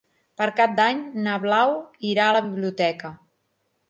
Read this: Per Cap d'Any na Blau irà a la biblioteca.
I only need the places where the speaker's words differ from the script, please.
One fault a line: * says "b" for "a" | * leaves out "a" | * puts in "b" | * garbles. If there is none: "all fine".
all fine